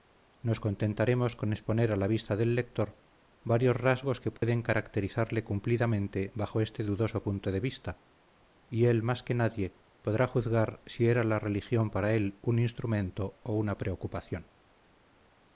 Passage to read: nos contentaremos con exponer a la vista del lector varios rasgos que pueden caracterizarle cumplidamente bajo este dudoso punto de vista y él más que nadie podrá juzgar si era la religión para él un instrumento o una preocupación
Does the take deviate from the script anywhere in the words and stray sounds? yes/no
yes